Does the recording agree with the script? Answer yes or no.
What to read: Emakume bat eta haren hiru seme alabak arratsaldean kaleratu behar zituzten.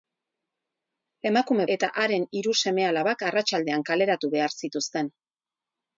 no